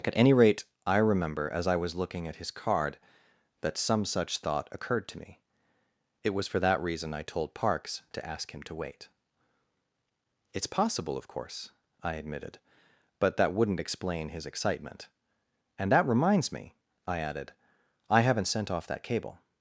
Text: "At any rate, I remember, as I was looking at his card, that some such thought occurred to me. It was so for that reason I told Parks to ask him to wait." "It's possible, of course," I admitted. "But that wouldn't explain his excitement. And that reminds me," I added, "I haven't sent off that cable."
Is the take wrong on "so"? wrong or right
wrong